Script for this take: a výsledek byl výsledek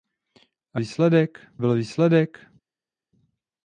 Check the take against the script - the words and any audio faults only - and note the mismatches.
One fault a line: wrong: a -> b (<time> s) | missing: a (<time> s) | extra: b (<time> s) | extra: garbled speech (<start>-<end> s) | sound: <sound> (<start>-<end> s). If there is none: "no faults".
no faults